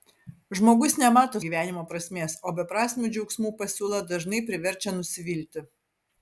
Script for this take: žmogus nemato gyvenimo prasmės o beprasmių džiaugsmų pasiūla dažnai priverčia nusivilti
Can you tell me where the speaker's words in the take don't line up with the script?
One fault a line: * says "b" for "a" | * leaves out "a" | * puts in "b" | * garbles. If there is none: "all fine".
all fine